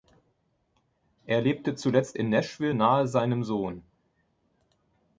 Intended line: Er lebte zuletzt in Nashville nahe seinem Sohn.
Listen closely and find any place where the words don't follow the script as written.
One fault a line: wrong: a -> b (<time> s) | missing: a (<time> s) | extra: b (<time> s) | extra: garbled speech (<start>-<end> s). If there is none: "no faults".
no faults